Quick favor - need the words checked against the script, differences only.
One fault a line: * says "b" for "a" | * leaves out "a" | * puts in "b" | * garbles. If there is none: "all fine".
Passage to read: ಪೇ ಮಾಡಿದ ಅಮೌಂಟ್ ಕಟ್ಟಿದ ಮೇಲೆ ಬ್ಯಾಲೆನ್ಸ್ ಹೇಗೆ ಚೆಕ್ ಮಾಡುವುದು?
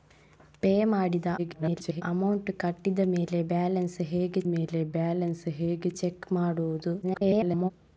* garbles
* puts in "ಮೇಲೆ ಬ್ಯಾಲೆನ್ಸ್ ಹೇಗೆ"
* garbles